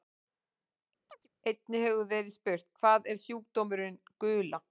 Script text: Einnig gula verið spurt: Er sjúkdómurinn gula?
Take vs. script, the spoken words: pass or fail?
fail